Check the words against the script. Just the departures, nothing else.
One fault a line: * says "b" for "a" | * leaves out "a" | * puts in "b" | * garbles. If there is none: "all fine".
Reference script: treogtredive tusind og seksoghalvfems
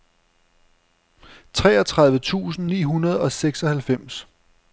* puts in "ni hundrede"